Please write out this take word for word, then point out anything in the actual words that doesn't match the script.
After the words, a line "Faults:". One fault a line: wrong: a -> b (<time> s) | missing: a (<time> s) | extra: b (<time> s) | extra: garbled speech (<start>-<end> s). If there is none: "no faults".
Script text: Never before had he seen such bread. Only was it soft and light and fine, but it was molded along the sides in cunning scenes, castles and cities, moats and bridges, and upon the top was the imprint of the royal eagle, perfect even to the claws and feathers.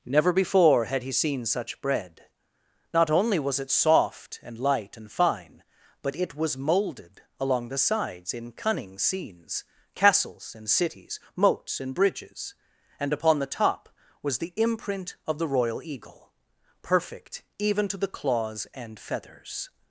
Never before had he seen such bread. Not only was it soft and light and fine, but it was molded along the sides in cunning scenes, castles and cities, moats and bridges, and upon the top was the imprint of the royal eagle, perfect even to the claws and feathers.
Faults:
extra: Not (2.9 s)